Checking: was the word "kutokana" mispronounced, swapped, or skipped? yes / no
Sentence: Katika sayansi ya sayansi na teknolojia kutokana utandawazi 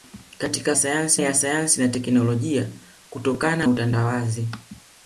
no